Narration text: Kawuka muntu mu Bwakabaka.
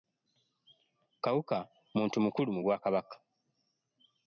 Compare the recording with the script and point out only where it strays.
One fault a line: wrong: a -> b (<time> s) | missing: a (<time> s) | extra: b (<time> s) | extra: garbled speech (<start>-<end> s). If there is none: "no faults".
extra: mukulu (2.2 s)